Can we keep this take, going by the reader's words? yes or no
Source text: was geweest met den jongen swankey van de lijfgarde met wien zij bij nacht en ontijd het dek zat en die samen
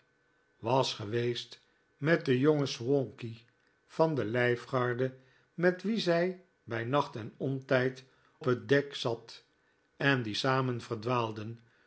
yes